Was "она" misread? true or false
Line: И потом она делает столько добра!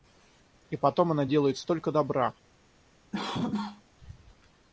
false